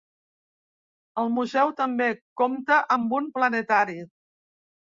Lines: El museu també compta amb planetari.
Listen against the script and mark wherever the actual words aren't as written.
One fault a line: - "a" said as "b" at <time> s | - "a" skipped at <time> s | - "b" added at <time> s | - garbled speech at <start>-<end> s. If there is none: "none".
- "un" added at 3.2 s